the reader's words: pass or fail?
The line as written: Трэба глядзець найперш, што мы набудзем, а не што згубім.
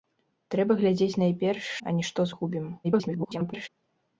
fail